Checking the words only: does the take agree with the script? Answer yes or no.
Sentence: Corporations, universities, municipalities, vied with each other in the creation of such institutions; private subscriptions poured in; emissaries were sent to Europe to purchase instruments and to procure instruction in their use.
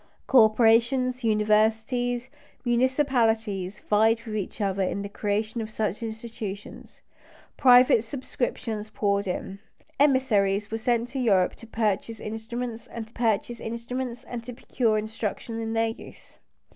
no